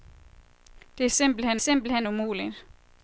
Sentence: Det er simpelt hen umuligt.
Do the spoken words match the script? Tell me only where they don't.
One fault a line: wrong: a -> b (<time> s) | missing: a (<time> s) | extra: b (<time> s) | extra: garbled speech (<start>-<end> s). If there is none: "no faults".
extra: simpelt hen (1.6 s)